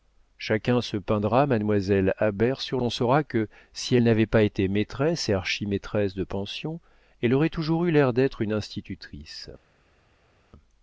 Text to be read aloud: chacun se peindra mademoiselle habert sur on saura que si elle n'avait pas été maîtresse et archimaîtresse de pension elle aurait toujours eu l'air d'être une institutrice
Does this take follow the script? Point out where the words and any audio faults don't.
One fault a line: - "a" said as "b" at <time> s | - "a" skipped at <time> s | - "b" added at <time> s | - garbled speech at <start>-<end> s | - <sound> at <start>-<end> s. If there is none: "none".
none